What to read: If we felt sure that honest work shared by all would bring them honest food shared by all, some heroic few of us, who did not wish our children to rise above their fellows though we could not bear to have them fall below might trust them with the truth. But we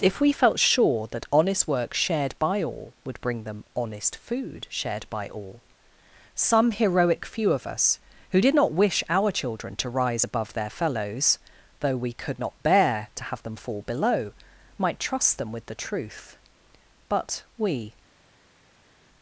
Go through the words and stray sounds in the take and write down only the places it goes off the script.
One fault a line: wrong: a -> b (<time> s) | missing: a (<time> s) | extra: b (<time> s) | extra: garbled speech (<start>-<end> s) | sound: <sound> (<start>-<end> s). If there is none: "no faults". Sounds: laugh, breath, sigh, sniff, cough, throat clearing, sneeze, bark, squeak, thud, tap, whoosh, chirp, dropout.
no faults